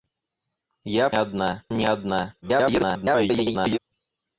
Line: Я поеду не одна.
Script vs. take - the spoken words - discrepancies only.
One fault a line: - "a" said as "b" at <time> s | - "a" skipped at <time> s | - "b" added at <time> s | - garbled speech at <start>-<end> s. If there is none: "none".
- "поеду" said as "одна" at 1.1 s
- garbled speech at 2.4-3.8 s